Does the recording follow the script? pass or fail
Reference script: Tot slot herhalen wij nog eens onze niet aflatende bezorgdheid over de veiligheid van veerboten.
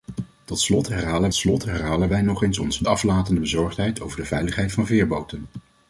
fail